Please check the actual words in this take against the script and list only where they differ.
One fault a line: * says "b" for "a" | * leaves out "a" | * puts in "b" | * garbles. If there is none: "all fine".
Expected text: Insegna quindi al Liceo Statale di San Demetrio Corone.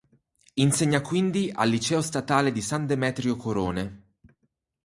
all fine